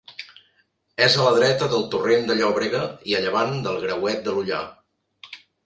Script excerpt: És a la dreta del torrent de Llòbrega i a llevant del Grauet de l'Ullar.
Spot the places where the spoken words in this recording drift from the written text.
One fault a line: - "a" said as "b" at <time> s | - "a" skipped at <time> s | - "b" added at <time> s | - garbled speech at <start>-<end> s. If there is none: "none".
none